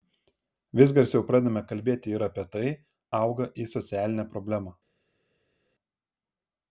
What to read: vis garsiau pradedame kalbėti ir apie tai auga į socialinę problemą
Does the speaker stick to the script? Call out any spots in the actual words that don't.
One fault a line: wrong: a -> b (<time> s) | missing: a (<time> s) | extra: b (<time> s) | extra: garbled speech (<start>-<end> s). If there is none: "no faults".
no faults